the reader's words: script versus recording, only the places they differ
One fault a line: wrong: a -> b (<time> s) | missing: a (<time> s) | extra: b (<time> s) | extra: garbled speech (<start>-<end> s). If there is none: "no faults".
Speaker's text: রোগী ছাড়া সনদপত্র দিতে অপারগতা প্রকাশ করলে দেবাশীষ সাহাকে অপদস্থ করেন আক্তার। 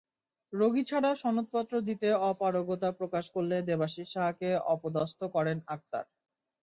no faults